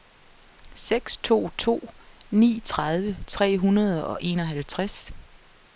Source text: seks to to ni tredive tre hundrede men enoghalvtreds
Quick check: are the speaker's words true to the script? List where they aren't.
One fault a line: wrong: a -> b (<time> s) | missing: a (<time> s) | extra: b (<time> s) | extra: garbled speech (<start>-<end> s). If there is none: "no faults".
wrong: men -> og (4.1 s)